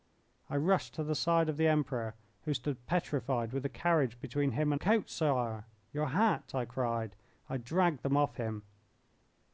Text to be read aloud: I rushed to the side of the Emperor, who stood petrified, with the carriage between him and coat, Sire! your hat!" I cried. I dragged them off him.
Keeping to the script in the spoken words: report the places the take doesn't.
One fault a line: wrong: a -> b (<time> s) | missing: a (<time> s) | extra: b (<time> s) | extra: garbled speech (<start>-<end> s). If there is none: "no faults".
no faults